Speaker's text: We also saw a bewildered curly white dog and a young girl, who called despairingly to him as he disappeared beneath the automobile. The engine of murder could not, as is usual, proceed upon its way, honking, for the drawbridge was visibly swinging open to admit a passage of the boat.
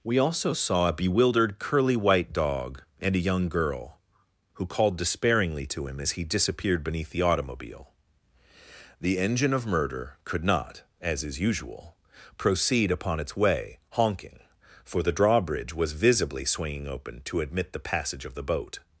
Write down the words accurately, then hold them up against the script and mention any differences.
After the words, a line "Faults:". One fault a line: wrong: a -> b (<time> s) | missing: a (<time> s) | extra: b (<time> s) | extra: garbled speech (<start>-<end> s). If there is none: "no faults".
We also saw a bewildered curly white dog and a young girl, who called despairingly to him as he disappeared beneath the automobile. The engine of murder could not, as is usual, proceed upon its way, honking, for the drawbridge was visibly swinging open to admit the passage of the boat.
Faults:
wrong: a -> the (17.7 s)